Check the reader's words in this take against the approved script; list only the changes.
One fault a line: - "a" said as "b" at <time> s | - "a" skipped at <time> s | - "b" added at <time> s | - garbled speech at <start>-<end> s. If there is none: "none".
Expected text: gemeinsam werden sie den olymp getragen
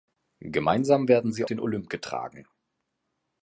none